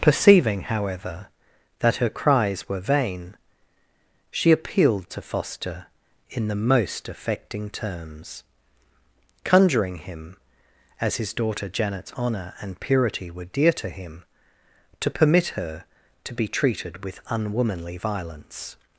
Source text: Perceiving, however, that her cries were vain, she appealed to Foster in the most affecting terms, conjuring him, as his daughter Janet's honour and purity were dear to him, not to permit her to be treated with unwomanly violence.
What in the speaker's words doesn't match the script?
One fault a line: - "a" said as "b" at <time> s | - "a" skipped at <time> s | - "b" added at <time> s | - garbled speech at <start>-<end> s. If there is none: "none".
- "not" skipped at 14.2 s